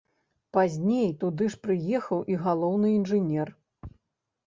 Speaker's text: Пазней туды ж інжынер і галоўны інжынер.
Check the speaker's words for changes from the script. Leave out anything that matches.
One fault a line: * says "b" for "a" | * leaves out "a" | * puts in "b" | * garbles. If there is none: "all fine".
* says "прыехаў" for "інжынер"